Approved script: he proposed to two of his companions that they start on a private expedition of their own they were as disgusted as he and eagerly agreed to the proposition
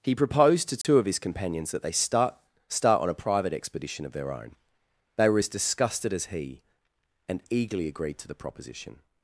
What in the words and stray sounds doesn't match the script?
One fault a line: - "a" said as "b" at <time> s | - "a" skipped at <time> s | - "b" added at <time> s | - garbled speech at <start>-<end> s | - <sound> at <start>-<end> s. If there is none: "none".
- dropout at 0.8-0.8 s
- "start" added at 2.7 s